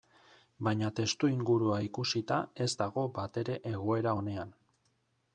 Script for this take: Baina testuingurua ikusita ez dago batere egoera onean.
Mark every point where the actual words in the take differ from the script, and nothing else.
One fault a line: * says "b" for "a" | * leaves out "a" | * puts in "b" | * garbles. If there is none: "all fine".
all fine